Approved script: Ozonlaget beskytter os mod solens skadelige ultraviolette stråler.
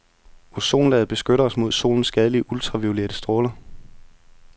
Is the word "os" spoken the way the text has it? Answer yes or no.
yes